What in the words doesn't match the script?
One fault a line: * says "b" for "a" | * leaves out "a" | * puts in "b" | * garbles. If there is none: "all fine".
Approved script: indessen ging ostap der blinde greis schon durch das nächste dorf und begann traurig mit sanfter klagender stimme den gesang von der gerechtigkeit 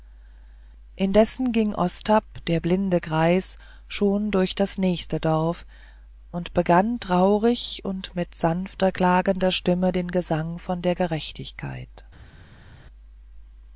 * puts in "und"